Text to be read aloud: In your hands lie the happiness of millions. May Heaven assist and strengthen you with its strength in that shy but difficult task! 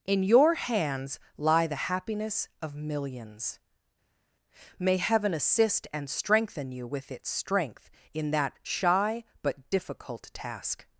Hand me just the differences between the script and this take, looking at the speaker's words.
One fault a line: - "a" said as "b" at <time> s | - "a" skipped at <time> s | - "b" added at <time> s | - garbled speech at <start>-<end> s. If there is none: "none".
none